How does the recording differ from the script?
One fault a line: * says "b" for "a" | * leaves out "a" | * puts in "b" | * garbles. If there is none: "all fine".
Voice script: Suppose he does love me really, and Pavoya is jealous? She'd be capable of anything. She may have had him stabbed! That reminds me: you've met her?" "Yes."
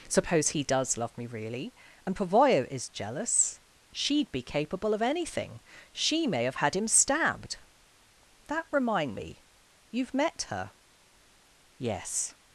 * says "remind" for "reminds"